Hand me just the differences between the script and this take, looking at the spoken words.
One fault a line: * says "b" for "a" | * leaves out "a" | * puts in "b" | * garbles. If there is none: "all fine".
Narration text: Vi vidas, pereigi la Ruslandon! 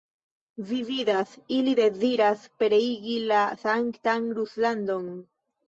* puts in "ili deziras"
* puts in "sanktan"